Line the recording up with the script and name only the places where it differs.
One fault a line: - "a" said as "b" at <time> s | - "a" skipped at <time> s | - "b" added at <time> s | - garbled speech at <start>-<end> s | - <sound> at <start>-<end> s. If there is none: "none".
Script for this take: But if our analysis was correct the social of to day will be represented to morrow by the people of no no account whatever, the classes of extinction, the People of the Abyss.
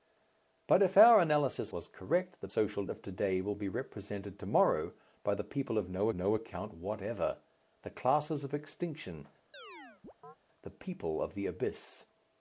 - chirp at 9.5-10.4 s